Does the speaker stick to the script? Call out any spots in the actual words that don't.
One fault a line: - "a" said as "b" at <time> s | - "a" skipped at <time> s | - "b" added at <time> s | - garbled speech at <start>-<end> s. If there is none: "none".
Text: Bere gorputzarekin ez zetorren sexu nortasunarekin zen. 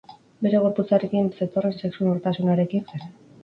none